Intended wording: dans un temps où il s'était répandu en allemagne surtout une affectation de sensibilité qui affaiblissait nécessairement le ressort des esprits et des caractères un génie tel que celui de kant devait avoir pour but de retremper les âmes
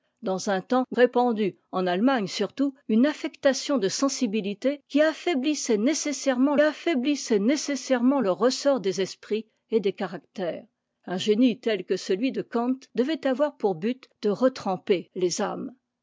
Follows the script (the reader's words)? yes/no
no